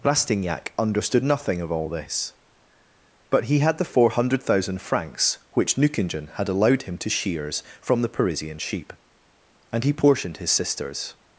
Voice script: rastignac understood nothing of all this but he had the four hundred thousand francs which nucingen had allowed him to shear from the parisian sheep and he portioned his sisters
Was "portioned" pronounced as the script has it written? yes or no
yes